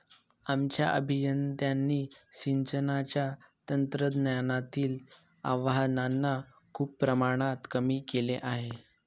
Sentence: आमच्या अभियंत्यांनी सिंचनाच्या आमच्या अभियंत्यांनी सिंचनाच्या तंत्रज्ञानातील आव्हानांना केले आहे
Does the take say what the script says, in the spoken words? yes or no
no